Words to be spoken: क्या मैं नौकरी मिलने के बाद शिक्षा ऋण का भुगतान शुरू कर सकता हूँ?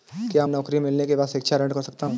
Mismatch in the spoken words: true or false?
true